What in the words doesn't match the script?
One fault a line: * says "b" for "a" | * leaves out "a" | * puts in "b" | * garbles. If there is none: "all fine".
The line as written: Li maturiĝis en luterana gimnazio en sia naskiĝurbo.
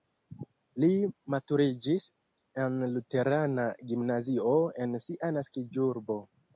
all fine